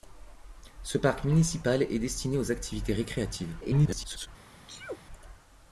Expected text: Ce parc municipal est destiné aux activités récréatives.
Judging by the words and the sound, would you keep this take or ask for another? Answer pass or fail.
fail